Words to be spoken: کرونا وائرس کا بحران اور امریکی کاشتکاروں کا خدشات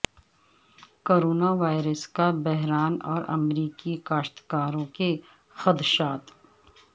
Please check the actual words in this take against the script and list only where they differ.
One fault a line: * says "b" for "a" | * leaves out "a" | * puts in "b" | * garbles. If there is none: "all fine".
* says "کے" for "کا"